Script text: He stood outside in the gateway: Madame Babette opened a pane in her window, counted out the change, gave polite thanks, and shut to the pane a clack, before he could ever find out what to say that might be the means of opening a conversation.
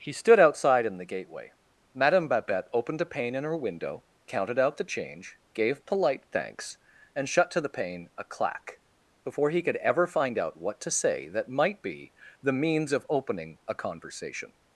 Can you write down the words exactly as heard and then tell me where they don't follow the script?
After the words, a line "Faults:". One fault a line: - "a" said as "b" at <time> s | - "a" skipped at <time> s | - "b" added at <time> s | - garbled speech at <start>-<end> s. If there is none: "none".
He stood outside in the gateway: Madame Babette opened a pane in her window, counted out the change, gave polite thanks, and shut to the pane a clack, before he could ever find out what to say that might be the means of opening a conversation.
Faults:
none